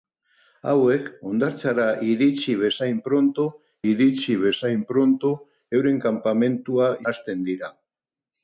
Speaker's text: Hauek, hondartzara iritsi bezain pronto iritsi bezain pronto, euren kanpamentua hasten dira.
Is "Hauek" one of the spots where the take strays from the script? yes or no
no